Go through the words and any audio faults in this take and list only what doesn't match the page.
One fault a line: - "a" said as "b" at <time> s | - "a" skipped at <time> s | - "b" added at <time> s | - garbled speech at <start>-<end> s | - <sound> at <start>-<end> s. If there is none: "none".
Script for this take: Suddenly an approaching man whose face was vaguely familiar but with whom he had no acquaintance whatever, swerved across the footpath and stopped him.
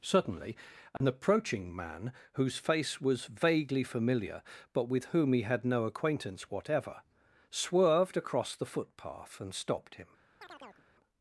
- dropout at 1.0-1.0 s
- chirp at 10.4-10.9 s